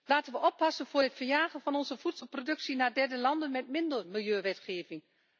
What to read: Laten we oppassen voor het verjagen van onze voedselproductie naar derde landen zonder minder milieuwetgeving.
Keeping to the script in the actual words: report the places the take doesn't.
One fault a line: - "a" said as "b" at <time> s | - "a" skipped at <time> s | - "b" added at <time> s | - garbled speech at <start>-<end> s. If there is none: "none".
- "zonder" said as "met" at 3.5 s